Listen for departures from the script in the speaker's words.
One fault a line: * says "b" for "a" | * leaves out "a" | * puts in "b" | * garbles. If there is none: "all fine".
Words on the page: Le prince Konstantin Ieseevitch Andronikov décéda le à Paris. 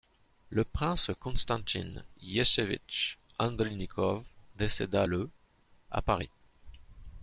all fine